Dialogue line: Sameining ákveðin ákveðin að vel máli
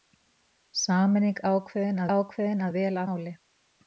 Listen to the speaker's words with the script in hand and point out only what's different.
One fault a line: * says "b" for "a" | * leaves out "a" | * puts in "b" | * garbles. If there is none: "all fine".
all fine